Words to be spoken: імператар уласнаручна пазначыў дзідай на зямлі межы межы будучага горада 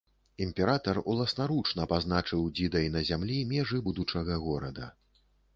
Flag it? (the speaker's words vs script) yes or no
yes